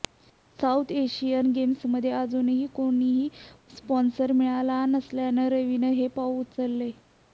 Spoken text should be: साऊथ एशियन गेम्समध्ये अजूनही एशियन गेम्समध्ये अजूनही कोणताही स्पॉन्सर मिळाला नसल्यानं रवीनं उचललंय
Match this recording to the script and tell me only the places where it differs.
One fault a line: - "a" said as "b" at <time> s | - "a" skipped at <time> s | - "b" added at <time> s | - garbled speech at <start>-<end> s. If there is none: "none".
- "एशियन गेम्समध्ये अजूनही" skipped at 2.6 s
- "हे पाऊल" added at 5.9 s